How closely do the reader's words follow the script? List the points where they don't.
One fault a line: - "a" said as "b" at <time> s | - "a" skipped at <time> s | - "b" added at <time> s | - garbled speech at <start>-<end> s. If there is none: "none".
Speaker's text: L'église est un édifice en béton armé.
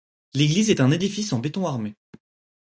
none